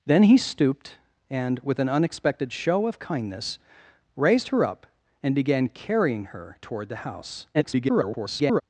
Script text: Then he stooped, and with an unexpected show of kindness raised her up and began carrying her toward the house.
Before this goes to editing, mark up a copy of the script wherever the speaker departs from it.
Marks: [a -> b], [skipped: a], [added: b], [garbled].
Then he stooped, and with an unexpected show of kindness raised her up and began carrying her toward the house. [garbled]